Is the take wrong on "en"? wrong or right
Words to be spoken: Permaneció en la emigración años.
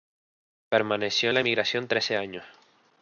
right